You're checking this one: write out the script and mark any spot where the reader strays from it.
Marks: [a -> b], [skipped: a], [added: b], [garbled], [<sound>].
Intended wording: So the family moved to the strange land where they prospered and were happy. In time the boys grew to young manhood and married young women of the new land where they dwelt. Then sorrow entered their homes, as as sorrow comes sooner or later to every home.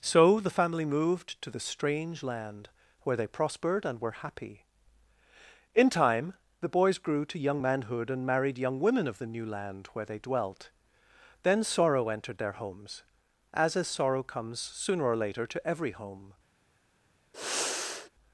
So the family moved to the strange land where they prospered and were happy. In time the boys grew to young manhood and married young women of the new land where they dwelt. Then sorrow entered their homes, as as sorrow comes sooner or later to every home. [sigh]